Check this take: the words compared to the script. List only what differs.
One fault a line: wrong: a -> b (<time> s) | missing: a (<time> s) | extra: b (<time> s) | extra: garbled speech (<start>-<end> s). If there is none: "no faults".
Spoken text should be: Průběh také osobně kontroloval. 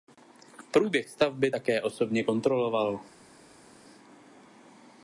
extra: stavby (1.1 s)